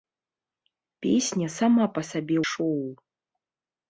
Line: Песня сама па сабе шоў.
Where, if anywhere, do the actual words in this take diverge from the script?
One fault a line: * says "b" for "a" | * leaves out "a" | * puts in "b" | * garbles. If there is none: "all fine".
all fine